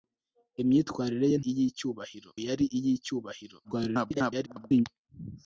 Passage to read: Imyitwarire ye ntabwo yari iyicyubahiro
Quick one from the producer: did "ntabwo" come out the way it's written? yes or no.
no